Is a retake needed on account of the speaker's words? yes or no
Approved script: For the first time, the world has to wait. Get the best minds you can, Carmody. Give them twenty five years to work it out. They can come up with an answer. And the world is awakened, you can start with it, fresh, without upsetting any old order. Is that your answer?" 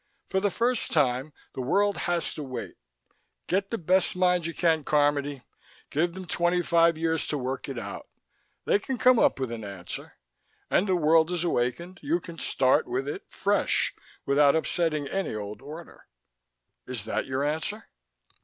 no